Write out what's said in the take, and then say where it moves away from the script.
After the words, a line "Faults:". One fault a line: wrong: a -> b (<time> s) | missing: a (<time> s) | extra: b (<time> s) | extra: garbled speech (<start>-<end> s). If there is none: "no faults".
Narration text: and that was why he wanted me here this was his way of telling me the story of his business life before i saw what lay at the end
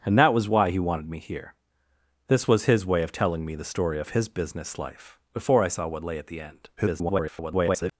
and that was why he wanted me here this was his way of telling me the story of his business life before i saw what lay at the end [garbled]
Faults:
extra: garbled speech (6.8-7.9 s)